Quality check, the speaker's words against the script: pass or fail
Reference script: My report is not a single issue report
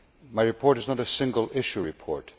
pass